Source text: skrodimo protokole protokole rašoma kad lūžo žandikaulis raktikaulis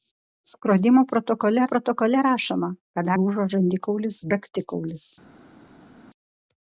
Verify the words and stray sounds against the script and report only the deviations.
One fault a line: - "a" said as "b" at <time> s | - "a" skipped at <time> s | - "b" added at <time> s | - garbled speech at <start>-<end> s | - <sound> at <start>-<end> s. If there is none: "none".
none